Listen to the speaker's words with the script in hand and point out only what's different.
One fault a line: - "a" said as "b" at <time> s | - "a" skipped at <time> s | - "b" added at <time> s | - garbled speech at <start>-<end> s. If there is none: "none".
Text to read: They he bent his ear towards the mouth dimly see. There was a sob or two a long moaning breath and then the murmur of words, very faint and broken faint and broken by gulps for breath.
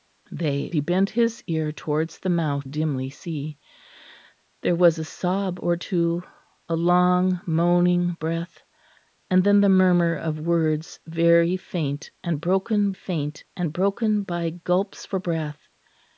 none